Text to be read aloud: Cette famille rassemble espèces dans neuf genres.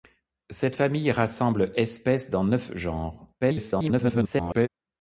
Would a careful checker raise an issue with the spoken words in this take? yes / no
yes